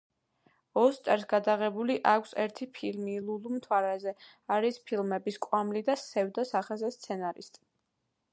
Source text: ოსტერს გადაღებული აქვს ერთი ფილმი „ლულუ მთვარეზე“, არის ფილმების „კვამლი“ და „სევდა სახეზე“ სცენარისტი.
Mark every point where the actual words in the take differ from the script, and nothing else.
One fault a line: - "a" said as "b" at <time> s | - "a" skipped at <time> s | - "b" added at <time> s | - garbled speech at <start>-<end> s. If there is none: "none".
none